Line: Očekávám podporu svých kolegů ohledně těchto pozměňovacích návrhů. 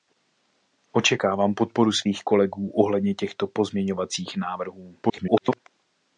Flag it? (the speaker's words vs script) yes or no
yes